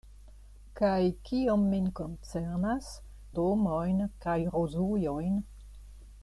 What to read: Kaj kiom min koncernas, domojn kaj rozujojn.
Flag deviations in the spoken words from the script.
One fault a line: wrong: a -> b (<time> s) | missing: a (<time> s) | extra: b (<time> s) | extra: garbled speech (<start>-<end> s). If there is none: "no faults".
no faults